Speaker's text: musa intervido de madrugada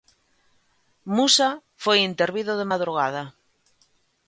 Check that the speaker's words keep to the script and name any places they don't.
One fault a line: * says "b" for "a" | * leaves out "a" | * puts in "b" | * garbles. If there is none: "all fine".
* puts in "foi"